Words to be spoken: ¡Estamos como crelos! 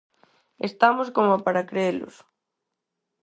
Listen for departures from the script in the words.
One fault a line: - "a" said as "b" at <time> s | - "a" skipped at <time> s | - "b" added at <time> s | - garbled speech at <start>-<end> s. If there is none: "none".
- "para" added at 1.4 s